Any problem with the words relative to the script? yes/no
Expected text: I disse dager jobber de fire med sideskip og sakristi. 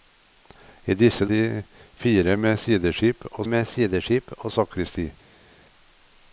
yes